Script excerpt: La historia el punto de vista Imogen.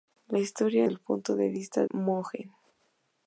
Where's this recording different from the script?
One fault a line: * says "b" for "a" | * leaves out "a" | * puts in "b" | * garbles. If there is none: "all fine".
all fine